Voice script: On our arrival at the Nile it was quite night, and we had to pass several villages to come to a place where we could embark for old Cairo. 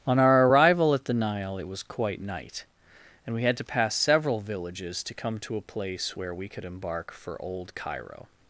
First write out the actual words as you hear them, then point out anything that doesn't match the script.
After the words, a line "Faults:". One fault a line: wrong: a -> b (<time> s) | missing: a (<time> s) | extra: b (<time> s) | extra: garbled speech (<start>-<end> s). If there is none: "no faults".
On our arrival at the Nile it was quite night, and we had to pass several villages to come to a place where we could embark for old Cairo.
Faults:
no faults